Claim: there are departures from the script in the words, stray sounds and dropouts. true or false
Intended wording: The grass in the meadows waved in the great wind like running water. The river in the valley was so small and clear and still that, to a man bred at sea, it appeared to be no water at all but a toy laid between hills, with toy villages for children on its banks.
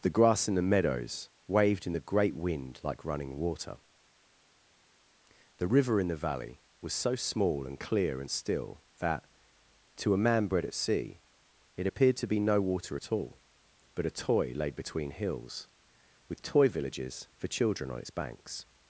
false